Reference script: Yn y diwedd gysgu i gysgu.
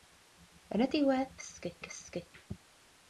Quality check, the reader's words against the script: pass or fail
pass